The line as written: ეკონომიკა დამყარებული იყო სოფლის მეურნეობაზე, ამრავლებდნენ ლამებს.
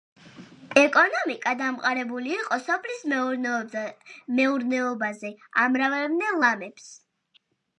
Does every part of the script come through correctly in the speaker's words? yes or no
yes